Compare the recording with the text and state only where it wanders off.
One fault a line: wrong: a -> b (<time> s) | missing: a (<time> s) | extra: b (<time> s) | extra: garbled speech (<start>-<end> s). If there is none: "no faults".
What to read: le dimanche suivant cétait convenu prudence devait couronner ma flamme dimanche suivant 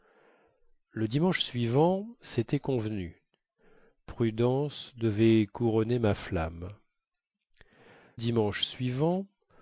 no faults